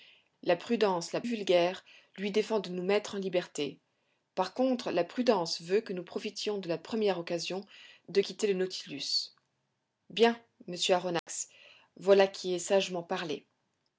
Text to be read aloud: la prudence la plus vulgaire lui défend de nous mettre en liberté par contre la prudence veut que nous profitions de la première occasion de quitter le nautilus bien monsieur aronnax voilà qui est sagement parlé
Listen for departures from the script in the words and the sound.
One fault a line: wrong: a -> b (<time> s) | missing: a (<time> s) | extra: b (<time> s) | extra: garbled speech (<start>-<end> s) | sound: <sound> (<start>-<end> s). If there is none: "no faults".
missing: plus (1.2 s)
sound: dropout (11.2-11.3 s)